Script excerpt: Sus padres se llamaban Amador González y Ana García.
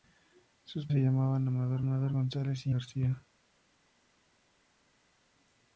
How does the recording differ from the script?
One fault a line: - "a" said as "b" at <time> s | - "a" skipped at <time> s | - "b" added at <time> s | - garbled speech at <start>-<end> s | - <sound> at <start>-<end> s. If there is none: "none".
- "padres" skipped at 0.9 s
- "Amador" added at 1.8 s
- "Ana" skipped at 2.7 s